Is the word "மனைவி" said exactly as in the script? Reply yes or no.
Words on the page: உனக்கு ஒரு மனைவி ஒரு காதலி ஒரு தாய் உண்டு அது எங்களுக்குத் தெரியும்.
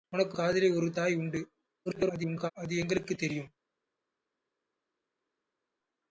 no